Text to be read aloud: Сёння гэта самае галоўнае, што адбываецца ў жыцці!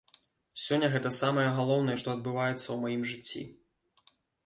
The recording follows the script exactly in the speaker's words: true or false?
false